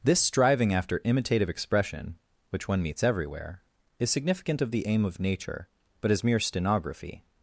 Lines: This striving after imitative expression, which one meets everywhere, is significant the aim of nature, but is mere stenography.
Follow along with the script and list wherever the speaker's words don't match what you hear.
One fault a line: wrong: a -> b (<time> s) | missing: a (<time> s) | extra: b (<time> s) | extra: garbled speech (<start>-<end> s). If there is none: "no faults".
extra: of (4.6 s)